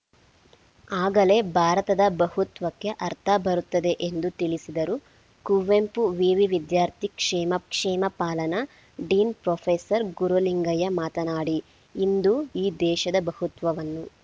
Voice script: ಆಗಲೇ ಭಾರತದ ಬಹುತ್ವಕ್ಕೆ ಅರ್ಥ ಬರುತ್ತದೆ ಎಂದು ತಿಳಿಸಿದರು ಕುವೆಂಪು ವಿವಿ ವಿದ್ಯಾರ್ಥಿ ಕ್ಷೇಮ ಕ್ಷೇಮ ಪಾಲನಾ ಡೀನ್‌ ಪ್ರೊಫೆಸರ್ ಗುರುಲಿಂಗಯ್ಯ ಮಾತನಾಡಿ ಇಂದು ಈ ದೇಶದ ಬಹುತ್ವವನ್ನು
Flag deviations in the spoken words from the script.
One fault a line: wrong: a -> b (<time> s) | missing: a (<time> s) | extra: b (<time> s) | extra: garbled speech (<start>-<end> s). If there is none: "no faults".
no faults